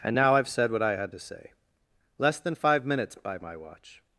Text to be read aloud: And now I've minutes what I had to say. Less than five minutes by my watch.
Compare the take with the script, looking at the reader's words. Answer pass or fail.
fail